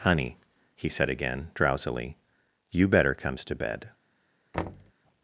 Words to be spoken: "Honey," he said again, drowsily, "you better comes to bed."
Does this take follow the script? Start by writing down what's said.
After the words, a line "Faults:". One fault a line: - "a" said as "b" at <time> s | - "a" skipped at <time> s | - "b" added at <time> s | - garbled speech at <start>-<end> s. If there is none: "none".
"Honey," he said again, drowsily, "you better comes to bed."
Faults:
none